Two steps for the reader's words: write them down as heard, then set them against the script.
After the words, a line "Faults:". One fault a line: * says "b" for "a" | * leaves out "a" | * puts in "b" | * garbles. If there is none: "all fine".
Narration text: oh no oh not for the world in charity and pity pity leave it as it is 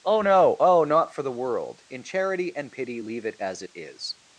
oh no oh not for the world in charity and pity leave it as it is
Faults:
* leaves out "pity"